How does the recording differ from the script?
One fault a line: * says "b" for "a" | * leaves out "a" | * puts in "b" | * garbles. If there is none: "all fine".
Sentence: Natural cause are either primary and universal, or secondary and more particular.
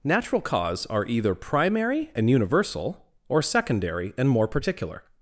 all fine